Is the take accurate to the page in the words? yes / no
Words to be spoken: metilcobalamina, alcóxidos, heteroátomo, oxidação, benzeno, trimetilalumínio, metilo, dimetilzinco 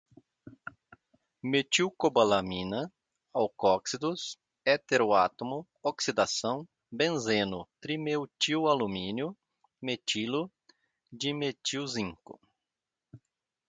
yes